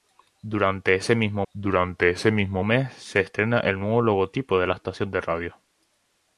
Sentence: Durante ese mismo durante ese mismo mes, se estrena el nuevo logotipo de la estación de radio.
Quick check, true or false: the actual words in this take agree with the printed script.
true